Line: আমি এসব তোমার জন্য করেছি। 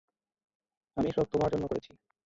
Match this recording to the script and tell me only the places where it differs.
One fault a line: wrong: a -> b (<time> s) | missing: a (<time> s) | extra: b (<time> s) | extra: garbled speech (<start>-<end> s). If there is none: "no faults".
no faults